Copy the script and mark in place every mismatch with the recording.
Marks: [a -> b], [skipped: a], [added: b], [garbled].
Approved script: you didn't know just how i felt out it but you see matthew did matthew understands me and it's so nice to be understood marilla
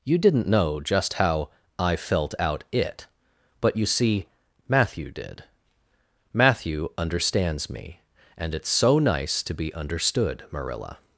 you didn't know just how i felt out it but you see matthew did matthew understands me and it's so nice to be understood marilla